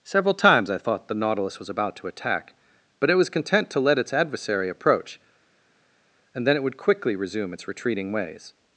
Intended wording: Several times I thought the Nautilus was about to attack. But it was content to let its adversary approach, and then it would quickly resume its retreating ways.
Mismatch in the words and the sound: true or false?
false